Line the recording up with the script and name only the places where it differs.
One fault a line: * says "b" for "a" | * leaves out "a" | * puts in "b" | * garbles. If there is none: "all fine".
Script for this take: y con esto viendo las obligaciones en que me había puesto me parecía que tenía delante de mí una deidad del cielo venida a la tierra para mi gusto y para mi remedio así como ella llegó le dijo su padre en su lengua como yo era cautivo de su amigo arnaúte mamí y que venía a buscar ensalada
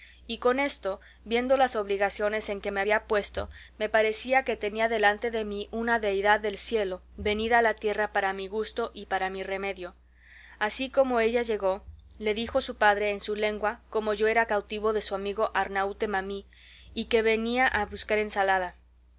all fine